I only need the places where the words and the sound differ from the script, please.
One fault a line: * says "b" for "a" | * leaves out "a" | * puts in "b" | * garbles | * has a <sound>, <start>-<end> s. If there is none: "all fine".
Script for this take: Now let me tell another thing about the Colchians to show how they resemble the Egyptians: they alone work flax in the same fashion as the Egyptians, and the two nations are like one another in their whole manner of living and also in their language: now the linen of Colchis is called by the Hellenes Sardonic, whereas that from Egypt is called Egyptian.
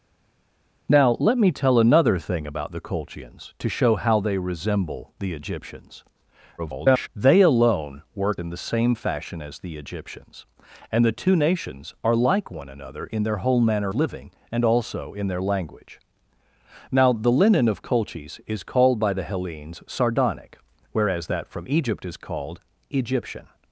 * garbles
* leaves out "flax"
* leaves out "of"